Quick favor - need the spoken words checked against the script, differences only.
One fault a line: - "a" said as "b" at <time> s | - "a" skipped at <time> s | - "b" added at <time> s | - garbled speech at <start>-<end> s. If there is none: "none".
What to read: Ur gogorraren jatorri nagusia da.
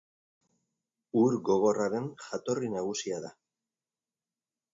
none